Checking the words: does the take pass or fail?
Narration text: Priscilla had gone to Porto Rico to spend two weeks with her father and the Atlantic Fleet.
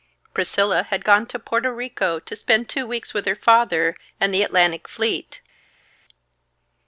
pass